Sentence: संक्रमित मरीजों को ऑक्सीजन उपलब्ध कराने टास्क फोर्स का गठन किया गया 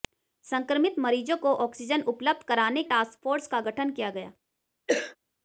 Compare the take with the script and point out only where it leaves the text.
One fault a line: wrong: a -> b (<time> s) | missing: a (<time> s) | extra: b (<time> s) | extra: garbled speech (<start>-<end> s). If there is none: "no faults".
no faults